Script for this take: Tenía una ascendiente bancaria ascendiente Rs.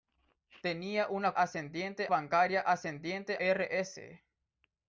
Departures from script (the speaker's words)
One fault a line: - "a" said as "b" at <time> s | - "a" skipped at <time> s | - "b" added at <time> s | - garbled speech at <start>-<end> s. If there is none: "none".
none